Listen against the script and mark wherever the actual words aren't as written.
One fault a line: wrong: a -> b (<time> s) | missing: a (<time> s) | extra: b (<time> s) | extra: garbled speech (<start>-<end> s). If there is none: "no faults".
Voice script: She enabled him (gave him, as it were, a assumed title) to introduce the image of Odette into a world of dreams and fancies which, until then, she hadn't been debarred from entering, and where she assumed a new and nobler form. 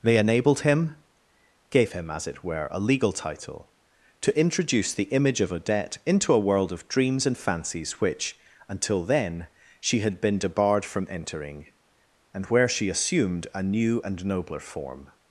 wrong: She -> They (0.0 s)
wrong: assumed -> legal (2.8 s)
wrong: hadn't -> had (10.0 s)